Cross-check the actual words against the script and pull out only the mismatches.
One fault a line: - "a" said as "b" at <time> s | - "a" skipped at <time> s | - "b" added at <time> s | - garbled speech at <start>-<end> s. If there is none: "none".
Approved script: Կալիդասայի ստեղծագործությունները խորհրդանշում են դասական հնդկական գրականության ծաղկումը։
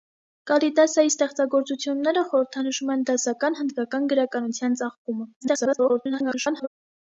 - garbled speech at 5.4-6.7 s